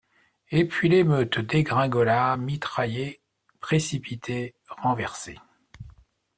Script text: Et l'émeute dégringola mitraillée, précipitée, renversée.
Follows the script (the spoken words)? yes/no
no